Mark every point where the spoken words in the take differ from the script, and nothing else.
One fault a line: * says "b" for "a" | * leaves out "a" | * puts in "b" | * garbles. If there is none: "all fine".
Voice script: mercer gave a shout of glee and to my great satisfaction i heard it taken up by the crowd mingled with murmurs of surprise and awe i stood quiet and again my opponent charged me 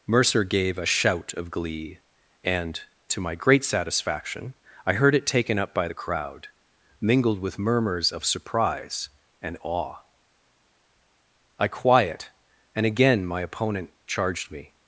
* leaves out "stood"